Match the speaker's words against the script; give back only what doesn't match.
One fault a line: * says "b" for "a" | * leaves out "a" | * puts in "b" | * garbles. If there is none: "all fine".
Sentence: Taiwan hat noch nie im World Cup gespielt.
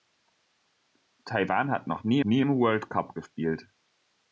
* puts in "nie"